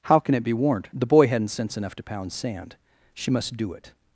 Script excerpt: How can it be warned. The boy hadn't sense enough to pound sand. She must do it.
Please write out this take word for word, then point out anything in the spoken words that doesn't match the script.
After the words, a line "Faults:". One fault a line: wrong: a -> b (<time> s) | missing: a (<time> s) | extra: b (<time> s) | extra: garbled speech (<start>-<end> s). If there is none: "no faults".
How can it be warned. The boy hadn't sense enough to pound sand. She must do it.
Faults:
no faults